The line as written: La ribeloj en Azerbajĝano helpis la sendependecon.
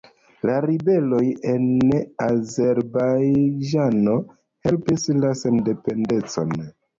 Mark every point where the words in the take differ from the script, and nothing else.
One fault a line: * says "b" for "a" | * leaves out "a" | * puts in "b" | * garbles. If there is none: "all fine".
all fine